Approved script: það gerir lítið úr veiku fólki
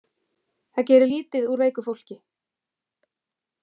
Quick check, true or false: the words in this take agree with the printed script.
true